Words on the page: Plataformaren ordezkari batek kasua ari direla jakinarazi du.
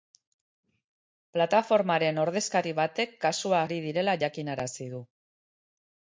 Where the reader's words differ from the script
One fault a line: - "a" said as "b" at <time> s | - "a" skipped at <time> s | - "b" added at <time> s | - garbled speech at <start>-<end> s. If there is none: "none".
none